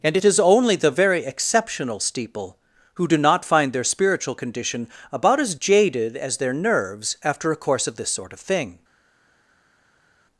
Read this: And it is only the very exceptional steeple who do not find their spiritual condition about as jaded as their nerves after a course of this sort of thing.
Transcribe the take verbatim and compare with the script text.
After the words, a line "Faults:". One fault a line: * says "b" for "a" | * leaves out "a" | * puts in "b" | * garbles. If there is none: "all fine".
And it is only the very exceptional steeple who do not find their spiritual condition about as jaded as their nerves after a course of this sort of thing.
Faults:
all fine